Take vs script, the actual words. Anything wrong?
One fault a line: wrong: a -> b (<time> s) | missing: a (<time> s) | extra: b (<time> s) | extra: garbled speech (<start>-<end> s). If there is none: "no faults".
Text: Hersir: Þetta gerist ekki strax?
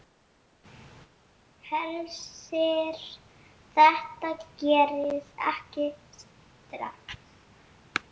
no faults